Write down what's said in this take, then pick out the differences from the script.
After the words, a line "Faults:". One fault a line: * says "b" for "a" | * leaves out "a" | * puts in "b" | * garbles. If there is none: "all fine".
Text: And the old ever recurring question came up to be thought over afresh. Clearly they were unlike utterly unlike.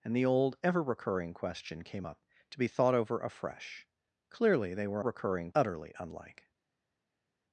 And the old ever recurring question came up to be thought over afresh. Clearly they were recurring utterly unlike.
Faults:
* says "recurring" for "unlike"